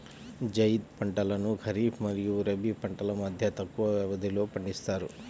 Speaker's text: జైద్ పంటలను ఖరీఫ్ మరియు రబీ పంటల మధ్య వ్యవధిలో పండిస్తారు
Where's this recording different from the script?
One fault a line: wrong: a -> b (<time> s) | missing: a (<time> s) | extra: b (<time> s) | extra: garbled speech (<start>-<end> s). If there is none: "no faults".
extra: తక్కువ (3.6 s)